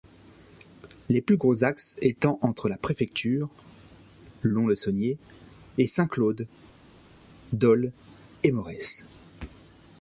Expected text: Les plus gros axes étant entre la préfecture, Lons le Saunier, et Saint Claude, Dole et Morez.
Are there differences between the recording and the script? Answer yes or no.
no